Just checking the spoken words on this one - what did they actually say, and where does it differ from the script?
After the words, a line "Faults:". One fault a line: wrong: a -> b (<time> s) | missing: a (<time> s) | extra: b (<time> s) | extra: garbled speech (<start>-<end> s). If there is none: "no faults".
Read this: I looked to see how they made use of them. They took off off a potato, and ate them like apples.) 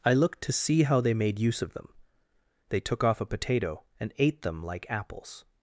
I looked to see how they made use of them. They took off a potato, and ate them like apples.)
Faults:
missing: off (3.2 s)